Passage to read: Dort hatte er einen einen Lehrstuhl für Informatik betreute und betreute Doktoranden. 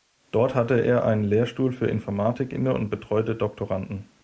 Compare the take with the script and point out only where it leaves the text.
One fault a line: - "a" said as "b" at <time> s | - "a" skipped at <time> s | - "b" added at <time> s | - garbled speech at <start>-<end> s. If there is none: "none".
- "einen" skipped at 1.2 s
- "betreute" said as "inne" at 2.5 s